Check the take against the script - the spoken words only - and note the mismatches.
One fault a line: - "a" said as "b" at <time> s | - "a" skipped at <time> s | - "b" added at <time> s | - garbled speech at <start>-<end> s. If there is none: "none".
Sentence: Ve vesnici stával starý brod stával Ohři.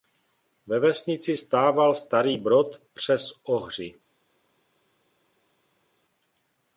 - "stával" said as "přes" at 2.9 s